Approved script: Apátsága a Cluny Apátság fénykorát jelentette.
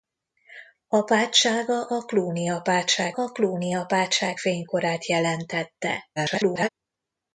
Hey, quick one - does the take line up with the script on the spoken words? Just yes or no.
no